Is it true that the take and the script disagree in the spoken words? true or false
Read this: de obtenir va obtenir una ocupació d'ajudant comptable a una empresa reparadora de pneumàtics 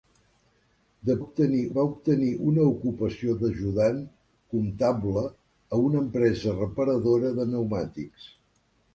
false